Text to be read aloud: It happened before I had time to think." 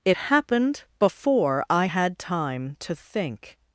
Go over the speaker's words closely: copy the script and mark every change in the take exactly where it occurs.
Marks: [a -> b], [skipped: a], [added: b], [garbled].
It happened before I had time to think."